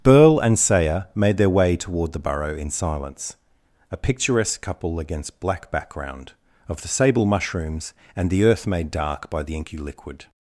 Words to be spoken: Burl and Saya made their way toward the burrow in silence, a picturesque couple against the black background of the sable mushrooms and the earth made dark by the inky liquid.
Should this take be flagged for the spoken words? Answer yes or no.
yes